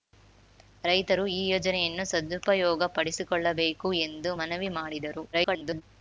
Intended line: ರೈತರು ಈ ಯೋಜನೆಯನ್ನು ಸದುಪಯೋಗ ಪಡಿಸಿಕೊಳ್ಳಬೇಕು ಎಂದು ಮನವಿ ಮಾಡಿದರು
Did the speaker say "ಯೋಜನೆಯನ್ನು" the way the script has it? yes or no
yes